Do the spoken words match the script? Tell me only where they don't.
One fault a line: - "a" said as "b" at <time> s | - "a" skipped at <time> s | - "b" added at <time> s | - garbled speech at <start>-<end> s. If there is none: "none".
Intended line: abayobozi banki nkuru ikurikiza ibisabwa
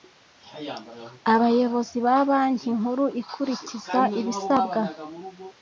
- "ba" added at 2.0 s